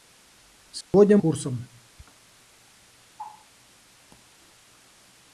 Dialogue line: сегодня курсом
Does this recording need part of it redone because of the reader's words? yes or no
no